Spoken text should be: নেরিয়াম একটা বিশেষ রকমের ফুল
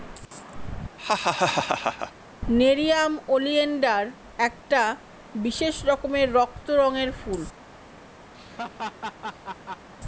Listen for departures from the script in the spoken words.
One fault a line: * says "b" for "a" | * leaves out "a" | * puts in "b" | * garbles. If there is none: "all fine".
* puts in "ওলিয়েনডার"
* puts in "রক্ত রঙের"